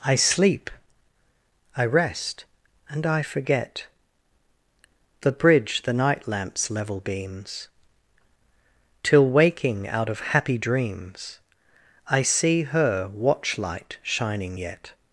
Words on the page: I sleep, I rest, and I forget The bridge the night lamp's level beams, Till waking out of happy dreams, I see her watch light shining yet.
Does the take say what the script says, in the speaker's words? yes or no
yes